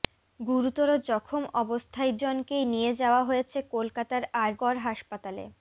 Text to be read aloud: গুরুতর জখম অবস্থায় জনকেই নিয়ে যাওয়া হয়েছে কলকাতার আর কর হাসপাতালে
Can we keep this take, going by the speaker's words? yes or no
yes